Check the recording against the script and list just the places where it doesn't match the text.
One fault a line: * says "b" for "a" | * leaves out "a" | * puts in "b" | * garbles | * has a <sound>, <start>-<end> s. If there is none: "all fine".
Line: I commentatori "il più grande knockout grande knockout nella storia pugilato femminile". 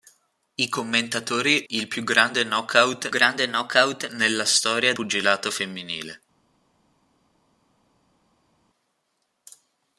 all fine